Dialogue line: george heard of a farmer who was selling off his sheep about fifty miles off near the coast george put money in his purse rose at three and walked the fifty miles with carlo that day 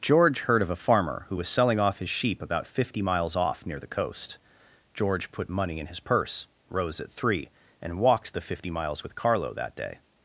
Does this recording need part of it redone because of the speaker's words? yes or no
no